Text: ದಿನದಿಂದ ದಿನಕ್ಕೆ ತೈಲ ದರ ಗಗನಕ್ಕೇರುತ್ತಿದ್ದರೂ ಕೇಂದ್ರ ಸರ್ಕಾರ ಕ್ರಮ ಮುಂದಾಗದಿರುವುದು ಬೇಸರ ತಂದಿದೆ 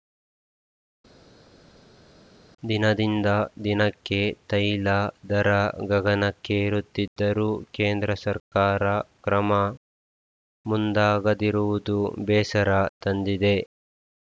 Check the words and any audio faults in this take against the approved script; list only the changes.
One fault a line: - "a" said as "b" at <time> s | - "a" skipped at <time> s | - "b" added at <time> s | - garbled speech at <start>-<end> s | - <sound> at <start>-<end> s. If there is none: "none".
none